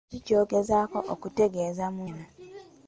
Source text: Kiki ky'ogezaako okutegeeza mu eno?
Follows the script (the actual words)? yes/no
yes